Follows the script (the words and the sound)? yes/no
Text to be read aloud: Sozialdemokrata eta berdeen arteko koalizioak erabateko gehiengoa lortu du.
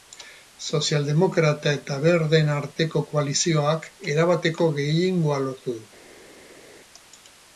yes